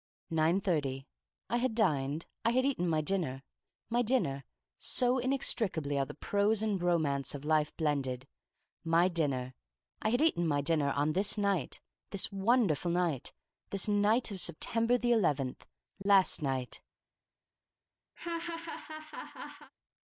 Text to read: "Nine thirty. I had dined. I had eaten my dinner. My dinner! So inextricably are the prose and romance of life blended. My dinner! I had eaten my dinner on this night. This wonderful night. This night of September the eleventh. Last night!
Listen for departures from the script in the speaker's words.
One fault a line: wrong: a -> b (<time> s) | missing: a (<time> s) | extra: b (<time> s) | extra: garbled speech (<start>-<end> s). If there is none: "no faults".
no faults